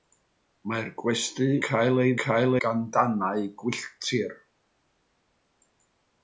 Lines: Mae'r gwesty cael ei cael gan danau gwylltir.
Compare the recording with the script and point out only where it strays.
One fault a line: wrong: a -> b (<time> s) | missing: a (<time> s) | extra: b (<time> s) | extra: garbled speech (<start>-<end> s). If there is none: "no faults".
no faults